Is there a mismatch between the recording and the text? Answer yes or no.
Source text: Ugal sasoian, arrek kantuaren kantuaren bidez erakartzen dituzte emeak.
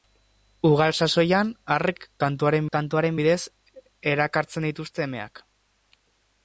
no